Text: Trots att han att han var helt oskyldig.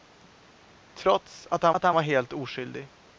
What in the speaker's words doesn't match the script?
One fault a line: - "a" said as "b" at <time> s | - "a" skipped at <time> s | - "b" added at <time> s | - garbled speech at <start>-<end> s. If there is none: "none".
none